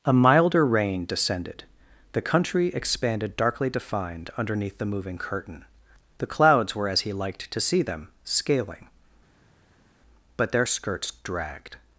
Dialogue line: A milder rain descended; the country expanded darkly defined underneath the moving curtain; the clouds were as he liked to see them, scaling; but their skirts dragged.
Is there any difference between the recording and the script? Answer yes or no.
no